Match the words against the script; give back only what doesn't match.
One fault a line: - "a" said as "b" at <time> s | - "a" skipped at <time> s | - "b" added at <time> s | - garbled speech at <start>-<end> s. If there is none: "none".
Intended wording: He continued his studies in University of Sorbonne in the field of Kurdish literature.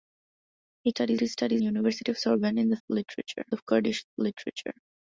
- "continued" said as "studies" at 0.9 s
- "in" skipped at 1.6 s
- "field" said as "literature" at 2.9 s